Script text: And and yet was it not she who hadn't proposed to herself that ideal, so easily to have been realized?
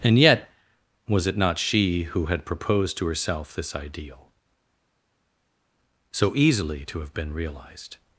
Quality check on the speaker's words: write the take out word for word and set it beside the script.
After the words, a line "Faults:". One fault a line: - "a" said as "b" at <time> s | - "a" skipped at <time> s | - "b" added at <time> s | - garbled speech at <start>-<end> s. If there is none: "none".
And yet was it not she who had proposed to herself this ideal, so easily to have been realized?
Faults:
- "and" skipped at 0.2 s
- "hadn't" said as "had" at 2.3 s
- "that" said as "this" at 3.5 s